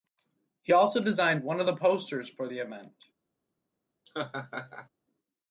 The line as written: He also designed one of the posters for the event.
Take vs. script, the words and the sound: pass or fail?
fail